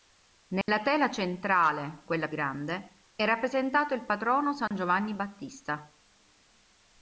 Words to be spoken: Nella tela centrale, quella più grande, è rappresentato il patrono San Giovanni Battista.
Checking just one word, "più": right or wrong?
wrong